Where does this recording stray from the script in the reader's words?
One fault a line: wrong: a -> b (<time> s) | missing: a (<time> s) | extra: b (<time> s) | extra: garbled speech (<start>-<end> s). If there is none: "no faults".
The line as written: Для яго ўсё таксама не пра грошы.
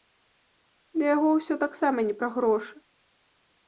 no faults